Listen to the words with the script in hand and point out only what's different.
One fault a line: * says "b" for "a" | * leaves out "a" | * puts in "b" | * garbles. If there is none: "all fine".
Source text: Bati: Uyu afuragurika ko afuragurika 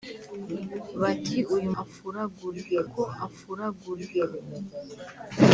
all fine